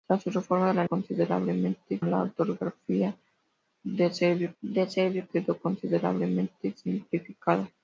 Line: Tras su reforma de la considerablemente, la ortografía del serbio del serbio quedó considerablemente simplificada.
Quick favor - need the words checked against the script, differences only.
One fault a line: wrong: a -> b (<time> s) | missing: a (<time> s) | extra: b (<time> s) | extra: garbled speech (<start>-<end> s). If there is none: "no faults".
no faults